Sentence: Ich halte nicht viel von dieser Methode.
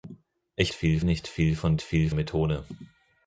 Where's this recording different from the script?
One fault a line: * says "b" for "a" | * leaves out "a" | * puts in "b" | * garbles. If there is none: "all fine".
* says "viel" for "halte"
* says "viel" for "dieser"